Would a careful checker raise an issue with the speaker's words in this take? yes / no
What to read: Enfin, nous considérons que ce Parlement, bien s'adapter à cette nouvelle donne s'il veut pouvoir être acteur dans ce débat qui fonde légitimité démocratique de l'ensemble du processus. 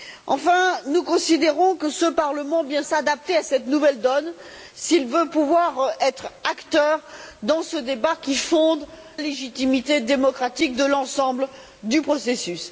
no